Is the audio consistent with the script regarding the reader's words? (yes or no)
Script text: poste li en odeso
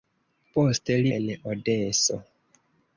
yes